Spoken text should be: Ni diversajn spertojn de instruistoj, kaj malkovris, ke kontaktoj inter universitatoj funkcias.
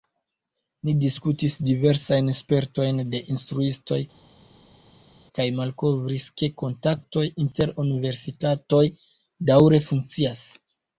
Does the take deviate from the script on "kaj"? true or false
false